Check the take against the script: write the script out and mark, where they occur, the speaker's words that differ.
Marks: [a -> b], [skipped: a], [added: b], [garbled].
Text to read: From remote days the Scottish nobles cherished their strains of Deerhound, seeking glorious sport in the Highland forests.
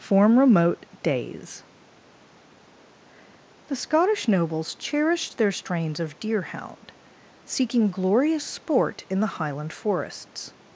[From -> Form] remote days the Scottish nobles cherished their strains of Deerhound, seeking glorious sport in the Highland forests.